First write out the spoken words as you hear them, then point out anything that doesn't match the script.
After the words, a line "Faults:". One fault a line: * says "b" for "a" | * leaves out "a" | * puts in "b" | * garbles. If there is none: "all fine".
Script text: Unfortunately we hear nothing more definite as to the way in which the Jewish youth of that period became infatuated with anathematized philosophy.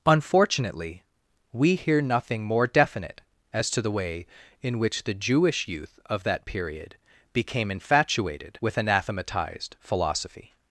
Unfortunately we hear nothing more definite as to the way in which the Jewish youth of that period became infatuated with anathematized philosophy.
Faults:
all fine